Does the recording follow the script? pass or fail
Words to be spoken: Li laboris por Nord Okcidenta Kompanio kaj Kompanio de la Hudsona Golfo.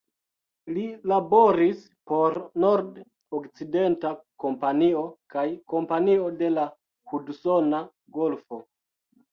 pass